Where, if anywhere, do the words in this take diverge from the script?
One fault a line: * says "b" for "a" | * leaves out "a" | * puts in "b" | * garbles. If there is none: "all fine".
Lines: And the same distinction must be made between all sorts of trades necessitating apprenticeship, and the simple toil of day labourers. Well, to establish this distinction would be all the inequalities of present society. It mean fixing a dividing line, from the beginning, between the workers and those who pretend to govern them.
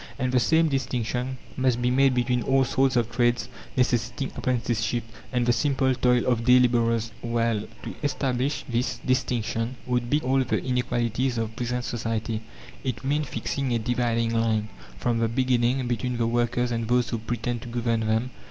all fine